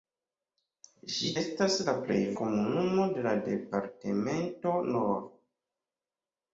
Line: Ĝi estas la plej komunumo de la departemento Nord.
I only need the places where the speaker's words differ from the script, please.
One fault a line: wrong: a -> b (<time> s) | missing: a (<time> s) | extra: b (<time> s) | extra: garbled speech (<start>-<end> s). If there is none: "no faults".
no faults